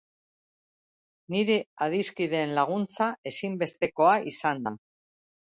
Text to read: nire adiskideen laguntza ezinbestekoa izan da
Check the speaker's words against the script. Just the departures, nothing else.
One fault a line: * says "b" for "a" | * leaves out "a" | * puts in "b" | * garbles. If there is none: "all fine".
all fine